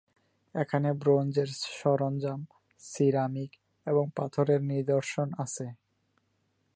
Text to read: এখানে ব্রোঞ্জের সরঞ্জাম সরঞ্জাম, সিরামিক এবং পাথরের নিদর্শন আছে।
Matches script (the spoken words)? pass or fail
fail